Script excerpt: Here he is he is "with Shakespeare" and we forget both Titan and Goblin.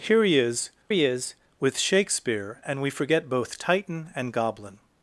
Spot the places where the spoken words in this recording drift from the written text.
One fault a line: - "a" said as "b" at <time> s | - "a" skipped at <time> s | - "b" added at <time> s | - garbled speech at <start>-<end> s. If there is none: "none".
none